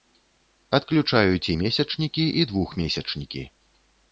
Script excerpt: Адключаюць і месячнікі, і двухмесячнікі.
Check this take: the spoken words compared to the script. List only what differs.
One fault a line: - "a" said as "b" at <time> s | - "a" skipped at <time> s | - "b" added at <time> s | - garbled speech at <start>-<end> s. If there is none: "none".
none